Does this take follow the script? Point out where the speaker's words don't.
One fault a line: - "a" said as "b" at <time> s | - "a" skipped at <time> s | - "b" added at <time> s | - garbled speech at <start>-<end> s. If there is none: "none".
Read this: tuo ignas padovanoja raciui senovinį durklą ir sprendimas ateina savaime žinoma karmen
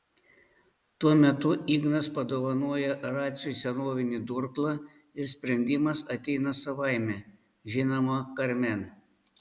- "metu" added at 1.2 s